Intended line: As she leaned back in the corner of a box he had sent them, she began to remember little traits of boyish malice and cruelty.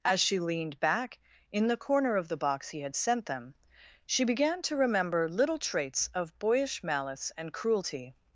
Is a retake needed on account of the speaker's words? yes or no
yes